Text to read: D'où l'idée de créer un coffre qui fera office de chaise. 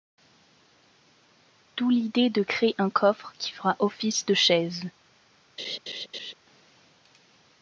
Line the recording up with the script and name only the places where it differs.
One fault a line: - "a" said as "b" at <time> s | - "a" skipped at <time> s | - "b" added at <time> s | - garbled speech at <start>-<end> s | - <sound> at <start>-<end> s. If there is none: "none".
- laugh at 5.6-6.3 s